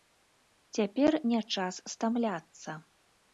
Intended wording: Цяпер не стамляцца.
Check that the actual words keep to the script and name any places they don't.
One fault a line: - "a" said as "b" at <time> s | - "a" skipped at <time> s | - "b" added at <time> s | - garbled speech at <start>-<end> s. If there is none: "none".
- "час" added at 1.6 s